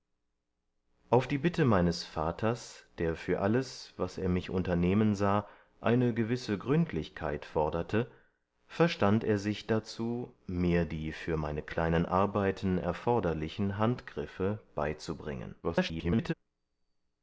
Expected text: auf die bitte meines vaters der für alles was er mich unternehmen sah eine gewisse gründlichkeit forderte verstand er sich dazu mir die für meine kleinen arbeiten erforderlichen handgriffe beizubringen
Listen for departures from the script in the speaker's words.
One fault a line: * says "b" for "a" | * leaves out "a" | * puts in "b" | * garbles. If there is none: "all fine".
* garbles